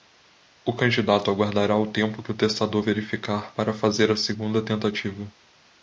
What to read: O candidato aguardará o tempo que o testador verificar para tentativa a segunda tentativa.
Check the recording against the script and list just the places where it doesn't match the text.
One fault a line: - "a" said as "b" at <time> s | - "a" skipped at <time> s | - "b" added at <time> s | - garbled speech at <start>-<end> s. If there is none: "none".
- "tentativa" said as "fazer" at 3.7 s